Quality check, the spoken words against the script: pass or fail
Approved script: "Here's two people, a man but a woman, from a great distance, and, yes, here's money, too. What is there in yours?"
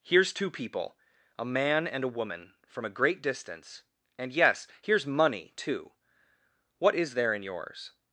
fail